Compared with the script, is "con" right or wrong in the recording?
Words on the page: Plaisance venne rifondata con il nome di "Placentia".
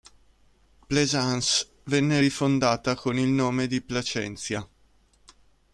right